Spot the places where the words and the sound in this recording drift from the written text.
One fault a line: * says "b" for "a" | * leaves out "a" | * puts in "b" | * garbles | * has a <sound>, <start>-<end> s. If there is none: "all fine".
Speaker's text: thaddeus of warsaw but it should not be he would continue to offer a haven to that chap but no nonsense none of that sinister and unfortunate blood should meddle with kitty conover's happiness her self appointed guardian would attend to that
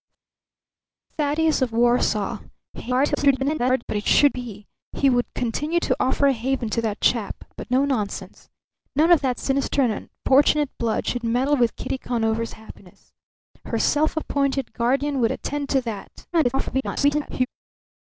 * garbles
* leaves out "not"
* garbles